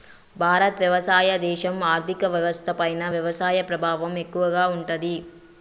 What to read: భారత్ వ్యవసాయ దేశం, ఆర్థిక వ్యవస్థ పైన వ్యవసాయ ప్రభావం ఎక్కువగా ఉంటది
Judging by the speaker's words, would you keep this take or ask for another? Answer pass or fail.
pass